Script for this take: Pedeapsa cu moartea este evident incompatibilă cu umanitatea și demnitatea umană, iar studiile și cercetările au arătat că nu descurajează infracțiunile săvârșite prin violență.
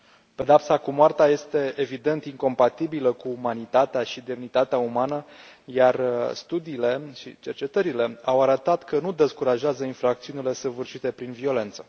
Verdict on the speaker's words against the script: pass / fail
pass